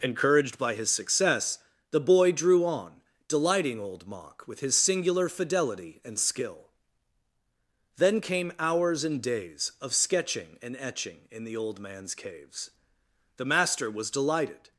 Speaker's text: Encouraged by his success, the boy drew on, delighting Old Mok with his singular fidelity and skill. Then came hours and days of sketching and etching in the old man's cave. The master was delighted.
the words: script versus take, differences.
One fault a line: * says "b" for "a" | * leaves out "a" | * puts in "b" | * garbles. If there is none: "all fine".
* says "caves" for "cave"